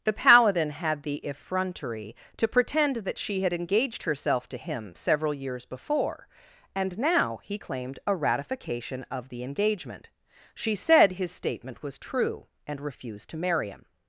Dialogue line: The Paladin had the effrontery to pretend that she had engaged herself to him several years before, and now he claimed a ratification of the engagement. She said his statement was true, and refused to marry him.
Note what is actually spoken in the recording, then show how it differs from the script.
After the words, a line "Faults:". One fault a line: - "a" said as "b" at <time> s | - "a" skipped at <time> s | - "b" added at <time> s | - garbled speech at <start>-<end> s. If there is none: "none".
The Paladin had the effrontery to pretend that she had engaged herself to him several years before, and now he claimed a ratification of the engagement. She said his statement was true, and refused to marry him.
Faults:
none